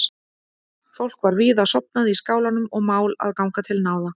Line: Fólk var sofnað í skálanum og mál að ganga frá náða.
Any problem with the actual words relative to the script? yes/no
yes